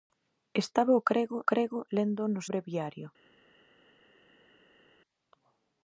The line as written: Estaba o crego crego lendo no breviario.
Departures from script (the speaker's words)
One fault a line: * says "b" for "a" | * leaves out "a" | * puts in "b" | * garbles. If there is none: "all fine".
all fine